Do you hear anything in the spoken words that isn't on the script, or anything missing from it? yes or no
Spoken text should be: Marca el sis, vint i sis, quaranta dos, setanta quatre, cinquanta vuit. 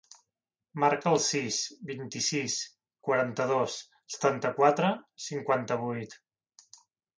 no